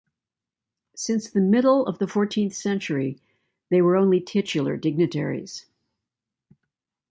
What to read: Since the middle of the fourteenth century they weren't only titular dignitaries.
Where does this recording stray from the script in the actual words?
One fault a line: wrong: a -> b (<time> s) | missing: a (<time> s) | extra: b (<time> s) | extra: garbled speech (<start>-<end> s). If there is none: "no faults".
wrong: weren't -> were (3.8 s)